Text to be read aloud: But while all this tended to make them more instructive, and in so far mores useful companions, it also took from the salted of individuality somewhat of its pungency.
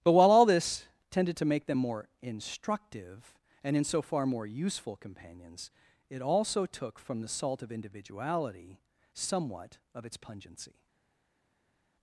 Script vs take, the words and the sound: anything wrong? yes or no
yes